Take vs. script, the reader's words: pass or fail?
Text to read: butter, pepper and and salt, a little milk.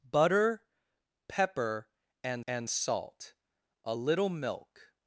pass